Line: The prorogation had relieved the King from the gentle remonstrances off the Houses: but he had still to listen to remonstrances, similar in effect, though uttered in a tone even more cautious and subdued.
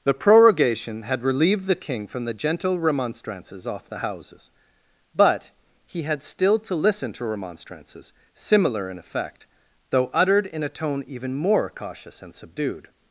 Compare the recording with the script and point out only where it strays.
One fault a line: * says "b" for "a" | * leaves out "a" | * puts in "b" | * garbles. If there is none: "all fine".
all fine